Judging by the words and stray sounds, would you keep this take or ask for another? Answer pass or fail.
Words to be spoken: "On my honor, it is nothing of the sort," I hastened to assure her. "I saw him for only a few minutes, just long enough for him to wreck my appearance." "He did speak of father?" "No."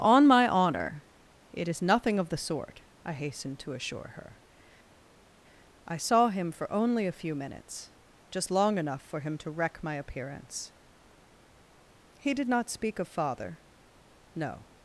fail